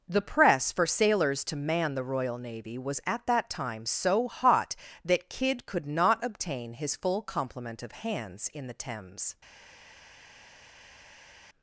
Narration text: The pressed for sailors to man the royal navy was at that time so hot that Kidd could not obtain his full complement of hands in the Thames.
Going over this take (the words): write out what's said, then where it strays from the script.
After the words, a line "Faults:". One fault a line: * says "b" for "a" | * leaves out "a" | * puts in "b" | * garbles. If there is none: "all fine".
The press for sailors to man the royal navy was at that time so hot that Kidd could not obtain his full complement of hands in the Thames.
Faults:
* says "press" for "pressed"